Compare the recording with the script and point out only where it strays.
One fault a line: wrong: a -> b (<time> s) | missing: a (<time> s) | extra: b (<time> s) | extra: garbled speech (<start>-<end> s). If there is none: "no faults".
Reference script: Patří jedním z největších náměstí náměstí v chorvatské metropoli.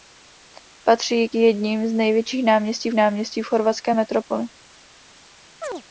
no faults